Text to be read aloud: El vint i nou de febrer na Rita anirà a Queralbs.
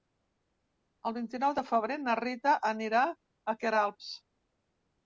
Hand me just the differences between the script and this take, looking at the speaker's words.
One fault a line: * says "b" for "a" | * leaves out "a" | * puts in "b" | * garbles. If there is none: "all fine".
all fine